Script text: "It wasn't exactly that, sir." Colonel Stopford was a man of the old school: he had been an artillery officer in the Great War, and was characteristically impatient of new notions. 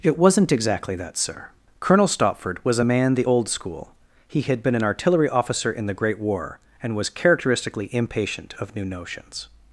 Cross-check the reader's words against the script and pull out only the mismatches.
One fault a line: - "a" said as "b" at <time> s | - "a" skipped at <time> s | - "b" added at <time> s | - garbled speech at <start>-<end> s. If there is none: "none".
- "of" skipped at 3.1 s